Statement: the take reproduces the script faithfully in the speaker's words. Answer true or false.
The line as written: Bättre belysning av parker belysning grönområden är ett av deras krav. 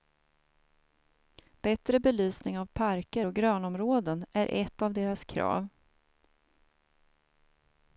false